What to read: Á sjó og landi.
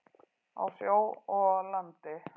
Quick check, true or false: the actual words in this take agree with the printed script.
true